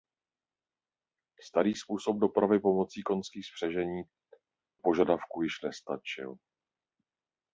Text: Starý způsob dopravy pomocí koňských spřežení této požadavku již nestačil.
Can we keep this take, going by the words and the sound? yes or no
no